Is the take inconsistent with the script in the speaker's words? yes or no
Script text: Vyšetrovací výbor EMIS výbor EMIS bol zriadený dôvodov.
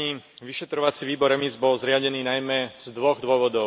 yes